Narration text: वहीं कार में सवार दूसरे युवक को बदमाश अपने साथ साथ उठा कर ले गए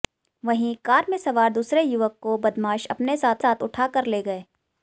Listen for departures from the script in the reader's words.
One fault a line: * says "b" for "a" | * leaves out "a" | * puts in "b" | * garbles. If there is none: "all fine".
all fine